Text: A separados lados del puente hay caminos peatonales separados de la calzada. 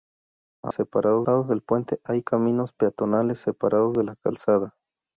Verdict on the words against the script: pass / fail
pass